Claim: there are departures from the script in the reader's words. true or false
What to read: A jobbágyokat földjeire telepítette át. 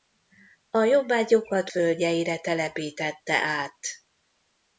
false